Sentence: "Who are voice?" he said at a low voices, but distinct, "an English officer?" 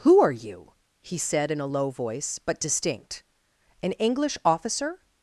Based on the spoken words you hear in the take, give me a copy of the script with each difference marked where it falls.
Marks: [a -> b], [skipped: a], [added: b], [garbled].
"Who are [voice?" -> you] he said [at -> in] a low [voices, -> voice] but distinct, "an English officer?"